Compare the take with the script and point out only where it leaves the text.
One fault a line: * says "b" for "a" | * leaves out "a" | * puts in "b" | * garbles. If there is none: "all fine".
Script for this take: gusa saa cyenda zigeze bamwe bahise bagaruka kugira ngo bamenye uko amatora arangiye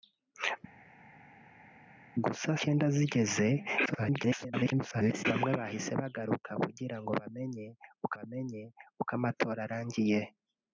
* leaves out "saa"
* garbles
* puts in "bamenye uko"